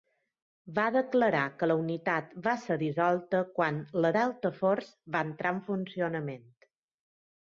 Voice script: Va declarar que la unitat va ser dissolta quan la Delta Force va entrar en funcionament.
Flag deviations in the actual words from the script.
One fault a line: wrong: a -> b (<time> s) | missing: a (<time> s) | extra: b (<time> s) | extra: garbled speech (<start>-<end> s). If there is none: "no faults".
no faults